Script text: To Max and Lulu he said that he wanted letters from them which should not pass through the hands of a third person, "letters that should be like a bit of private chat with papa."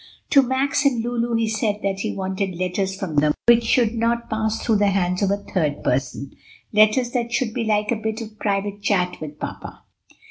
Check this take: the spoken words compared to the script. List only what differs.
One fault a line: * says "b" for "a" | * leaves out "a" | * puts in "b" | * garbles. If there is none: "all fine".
all fine